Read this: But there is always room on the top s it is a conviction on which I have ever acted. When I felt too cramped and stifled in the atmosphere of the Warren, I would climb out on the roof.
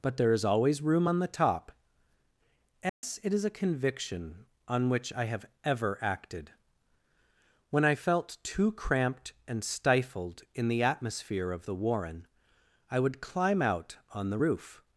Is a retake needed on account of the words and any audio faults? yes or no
yes